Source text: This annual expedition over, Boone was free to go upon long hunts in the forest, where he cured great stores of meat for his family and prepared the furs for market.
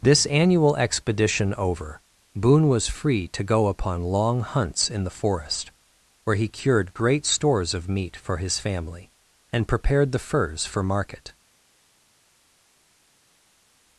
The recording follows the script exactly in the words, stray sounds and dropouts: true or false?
true